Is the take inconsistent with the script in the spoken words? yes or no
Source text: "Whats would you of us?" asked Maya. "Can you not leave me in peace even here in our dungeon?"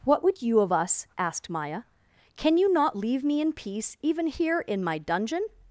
yes